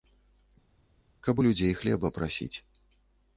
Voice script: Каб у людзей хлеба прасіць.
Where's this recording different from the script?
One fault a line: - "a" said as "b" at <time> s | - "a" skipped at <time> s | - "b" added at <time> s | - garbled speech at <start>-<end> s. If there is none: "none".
none